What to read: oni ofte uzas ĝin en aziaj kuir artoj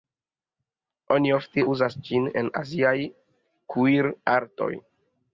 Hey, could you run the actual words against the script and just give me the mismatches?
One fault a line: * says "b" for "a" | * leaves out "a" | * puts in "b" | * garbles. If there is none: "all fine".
all fine